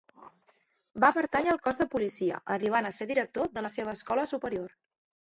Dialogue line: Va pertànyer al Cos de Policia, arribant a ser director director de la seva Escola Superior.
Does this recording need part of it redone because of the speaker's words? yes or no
yes